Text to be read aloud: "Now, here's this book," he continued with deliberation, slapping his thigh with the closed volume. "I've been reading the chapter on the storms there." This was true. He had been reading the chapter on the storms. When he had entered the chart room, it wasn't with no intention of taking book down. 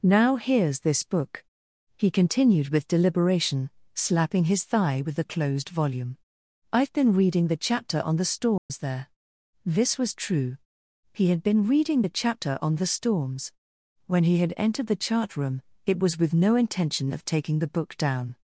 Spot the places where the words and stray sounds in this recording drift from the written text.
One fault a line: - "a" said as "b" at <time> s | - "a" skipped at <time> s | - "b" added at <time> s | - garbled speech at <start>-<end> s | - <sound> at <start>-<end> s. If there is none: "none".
- dropout at 8.6-8.7 s
- "wasn't" said as "was" at 16.0 s
- "the" added at 17.6 s